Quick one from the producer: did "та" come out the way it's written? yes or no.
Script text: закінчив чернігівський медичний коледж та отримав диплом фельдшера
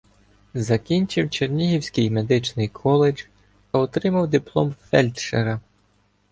no